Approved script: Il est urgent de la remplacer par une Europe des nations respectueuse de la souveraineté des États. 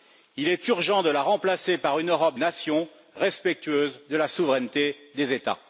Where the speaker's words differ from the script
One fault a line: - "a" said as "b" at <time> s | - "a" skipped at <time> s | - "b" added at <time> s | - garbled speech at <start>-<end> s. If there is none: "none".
- "des" skipped at 2.4 s